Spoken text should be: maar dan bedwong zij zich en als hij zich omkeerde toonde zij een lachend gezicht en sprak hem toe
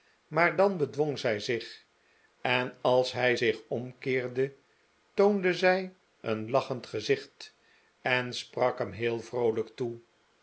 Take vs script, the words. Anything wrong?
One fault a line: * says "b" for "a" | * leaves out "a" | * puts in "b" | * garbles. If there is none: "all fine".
* puts in "heel vroolijk"